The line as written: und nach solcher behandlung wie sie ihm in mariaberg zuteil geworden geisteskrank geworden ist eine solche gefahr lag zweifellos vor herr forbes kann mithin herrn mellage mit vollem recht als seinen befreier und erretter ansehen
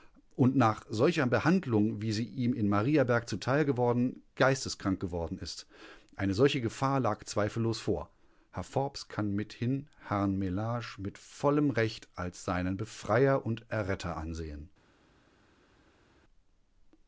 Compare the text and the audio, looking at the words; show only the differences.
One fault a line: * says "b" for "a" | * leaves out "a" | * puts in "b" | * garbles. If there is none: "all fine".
all fine